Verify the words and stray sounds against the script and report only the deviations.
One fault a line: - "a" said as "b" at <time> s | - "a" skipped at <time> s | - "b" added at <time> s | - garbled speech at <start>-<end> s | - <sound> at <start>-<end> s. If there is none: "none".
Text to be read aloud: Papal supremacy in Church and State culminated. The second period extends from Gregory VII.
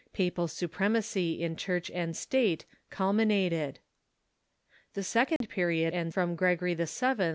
- dropout at 5.4-5.4 s
- "extends" said as "and" at 5.9 s